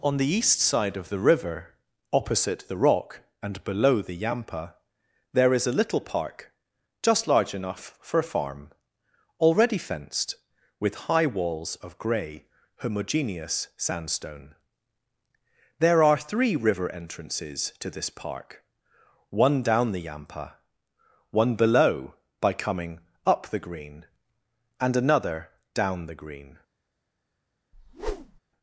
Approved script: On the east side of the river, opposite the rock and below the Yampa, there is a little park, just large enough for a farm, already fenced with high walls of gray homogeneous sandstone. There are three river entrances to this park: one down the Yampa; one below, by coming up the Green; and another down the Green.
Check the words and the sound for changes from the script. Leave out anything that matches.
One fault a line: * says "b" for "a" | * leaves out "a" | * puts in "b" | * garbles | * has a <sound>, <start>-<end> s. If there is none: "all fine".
* has a whoosh, 27.7-28.4 s